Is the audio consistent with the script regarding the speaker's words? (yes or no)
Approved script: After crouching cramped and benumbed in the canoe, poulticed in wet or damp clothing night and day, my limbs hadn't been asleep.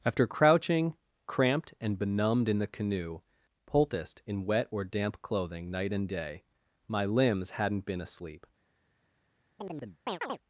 yes